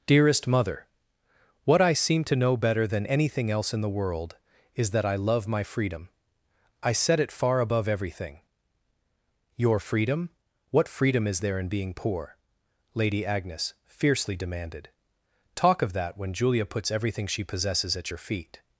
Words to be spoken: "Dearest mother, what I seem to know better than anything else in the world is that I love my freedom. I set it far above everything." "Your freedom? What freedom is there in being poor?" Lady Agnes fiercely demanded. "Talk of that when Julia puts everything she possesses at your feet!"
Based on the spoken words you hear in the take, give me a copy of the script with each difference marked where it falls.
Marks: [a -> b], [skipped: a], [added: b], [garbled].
"Dearest mother, what I seem to know better than anything else in the world is that I love my freedom. I set it far above everything." "Your freedom? What freedom is there in being poor?" Lady Agnes fiercely demanded. "Talk of that when Julia puts everything she possesses at your feet!"